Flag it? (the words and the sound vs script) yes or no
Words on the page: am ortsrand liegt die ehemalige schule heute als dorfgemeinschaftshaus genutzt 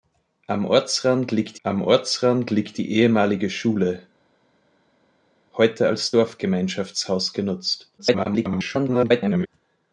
yes